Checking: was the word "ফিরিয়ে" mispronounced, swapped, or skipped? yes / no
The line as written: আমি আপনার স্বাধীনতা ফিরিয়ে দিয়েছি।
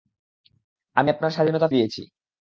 yes